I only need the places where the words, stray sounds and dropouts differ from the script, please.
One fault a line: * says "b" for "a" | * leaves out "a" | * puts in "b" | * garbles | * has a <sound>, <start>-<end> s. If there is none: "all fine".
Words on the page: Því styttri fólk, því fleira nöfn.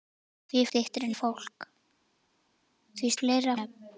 all fine